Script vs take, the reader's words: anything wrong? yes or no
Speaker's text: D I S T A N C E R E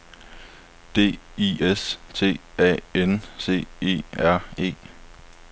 no